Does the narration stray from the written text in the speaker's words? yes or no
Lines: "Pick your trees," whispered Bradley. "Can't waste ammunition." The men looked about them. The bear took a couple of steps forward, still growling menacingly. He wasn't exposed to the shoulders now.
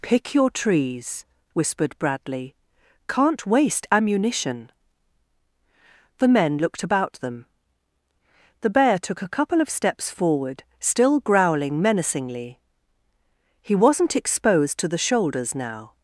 no